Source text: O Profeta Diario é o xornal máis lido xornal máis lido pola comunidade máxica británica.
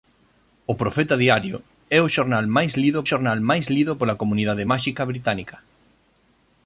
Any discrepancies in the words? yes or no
no